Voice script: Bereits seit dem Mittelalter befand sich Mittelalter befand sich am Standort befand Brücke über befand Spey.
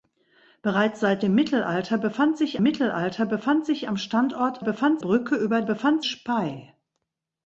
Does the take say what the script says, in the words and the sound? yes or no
yes